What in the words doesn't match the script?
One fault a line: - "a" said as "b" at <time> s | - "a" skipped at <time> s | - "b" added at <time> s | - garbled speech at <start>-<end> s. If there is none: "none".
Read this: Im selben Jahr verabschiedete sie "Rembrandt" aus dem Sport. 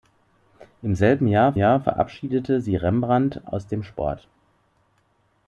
- "Jahr" added at 1.5 s